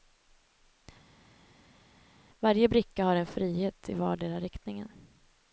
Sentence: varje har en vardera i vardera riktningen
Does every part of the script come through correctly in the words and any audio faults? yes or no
no